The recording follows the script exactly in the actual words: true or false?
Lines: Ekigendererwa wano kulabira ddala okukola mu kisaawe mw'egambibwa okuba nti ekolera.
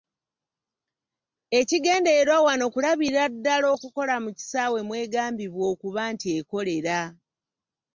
true